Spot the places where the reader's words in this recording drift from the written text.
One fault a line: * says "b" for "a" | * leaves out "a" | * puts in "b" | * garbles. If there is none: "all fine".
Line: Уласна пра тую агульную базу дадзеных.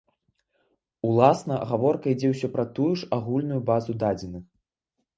* puts in "гаворка ідзе ўсё"
* puts in "ж"